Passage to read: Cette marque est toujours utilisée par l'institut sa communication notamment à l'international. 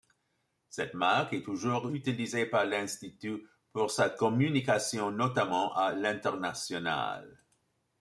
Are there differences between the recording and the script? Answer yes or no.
yes